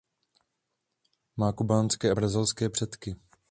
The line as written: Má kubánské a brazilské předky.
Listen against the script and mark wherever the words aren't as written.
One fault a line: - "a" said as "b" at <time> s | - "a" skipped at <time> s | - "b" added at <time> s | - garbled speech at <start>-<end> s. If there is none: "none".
none